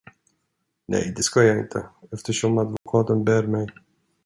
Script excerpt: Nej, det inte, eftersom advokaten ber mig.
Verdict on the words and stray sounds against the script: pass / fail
fail